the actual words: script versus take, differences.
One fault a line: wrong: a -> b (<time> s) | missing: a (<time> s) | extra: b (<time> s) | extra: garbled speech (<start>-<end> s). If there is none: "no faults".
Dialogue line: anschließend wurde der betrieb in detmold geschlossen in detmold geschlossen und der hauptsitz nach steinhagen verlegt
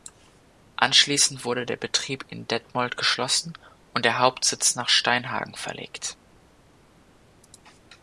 missing: in detmold geschlossen (3.5 s)